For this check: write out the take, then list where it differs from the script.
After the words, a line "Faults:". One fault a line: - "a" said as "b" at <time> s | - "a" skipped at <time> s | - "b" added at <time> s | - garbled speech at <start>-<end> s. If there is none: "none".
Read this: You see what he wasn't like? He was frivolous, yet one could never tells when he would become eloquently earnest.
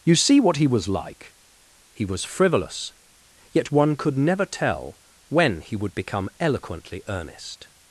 You see what he was like? He was frivolous, yet one could never tell when he would become eloquently earnest.
Faults:
- "wasn't" said as "was" at 0.7 s
- "tells" said as "tell" at 4.5 s